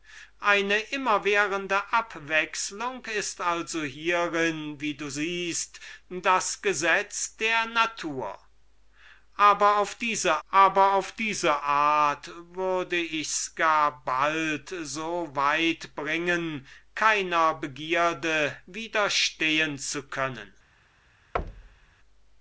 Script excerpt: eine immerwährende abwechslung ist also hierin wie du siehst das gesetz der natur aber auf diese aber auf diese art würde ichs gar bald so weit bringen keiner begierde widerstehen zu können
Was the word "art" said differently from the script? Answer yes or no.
no